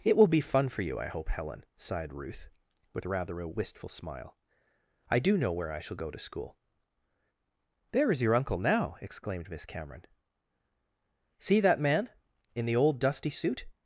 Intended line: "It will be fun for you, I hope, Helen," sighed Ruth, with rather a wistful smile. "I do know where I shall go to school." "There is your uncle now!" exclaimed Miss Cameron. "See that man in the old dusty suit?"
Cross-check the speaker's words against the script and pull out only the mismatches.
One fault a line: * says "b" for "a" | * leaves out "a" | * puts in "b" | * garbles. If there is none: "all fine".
all fine